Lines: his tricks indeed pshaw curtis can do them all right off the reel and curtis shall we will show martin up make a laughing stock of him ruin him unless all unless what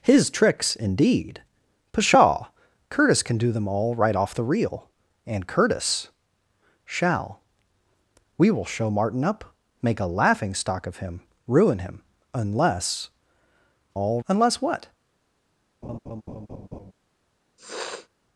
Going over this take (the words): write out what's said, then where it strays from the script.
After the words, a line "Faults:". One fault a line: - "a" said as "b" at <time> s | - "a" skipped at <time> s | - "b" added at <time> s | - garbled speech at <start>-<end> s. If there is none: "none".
his tricks indeed pshaw curtis can do them all right off the reel and curtis shall we will show martin up make a laughing stock of him ruin him unless all unless what
Faults:
none